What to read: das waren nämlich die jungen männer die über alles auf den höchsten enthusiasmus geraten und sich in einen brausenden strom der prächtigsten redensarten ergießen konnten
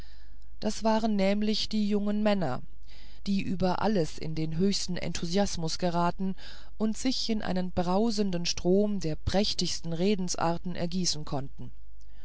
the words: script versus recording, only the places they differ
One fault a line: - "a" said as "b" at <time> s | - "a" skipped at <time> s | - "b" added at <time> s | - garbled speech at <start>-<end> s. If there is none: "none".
- "auf" said as "in" at 4.2 s